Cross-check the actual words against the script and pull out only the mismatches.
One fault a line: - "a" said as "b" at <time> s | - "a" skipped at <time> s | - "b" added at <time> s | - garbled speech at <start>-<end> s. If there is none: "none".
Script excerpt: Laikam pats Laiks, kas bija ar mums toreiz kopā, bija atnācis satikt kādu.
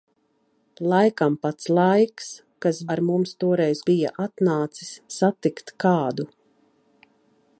- "bija" skipped at 2.8 s
- "kopā" skipped at 3.8 s